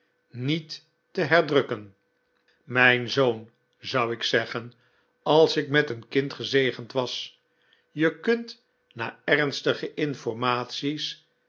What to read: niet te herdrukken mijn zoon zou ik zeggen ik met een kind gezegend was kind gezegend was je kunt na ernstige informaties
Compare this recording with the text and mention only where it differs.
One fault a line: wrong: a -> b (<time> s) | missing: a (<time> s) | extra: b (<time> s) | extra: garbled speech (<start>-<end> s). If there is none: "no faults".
extra: als (5.2 s)
missing: kind gezegend was (7.4 s)